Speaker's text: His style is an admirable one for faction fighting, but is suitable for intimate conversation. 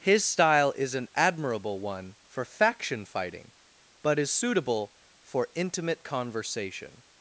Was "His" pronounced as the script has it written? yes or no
yes